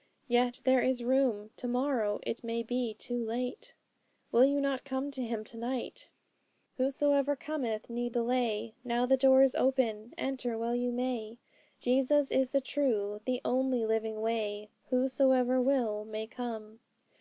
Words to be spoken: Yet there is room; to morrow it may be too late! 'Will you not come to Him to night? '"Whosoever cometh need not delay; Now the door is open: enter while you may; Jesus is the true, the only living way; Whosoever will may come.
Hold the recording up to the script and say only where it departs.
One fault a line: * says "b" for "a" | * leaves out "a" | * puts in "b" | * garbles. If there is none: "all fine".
* leaves out "not"